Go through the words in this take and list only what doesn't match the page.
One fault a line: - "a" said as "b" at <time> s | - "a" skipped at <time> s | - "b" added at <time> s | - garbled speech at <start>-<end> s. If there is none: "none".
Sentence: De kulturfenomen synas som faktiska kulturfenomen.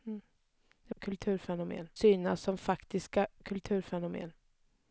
none